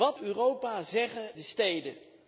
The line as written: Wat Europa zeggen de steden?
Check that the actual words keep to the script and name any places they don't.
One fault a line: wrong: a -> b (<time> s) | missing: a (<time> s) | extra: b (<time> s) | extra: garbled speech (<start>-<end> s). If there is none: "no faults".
no faults